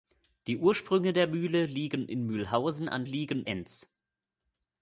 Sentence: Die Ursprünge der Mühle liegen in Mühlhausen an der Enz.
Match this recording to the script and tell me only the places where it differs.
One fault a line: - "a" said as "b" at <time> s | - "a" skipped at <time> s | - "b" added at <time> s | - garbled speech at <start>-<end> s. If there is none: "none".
- "der" said as "liegen" at 3.0 s